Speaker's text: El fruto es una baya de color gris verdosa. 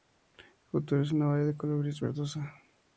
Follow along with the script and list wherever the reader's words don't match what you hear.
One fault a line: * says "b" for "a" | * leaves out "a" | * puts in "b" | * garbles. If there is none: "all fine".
all fine